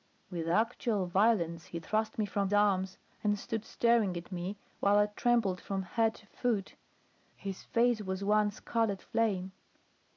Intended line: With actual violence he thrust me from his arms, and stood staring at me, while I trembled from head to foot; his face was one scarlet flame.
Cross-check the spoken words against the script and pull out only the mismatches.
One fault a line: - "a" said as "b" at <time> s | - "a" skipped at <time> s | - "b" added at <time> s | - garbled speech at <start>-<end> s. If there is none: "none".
- "his" skipped at 2.5 s